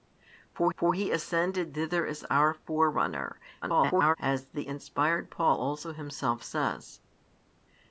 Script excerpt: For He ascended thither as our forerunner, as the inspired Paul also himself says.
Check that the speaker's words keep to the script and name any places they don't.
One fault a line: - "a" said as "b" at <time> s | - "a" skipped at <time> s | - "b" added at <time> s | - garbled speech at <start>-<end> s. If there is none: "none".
- "for" added at 0.8 s
- garbled speech at 3.6-4.2 s